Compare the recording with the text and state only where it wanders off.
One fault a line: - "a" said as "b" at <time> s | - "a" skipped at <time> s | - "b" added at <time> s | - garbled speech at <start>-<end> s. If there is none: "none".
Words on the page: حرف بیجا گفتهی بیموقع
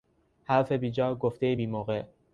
none